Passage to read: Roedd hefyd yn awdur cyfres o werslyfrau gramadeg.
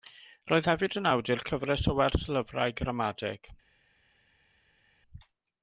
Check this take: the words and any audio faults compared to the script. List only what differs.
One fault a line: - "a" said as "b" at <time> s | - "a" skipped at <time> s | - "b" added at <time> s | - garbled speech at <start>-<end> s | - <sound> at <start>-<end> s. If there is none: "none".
none